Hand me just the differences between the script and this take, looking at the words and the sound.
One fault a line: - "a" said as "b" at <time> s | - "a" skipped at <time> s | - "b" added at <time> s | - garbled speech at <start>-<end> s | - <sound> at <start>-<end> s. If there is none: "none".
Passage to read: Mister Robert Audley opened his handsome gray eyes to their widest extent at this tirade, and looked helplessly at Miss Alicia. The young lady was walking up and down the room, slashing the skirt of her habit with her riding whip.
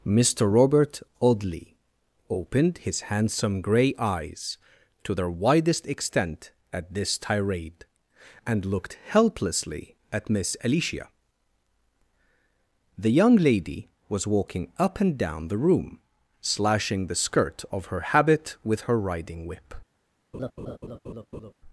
- laugh at 20.3-21.5 s